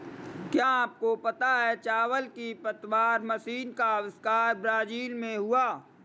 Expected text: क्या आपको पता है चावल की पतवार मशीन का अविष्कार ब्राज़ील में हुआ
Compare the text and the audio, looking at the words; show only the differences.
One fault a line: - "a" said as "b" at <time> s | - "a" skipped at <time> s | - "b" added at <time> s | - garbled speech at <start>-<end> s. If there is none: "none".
none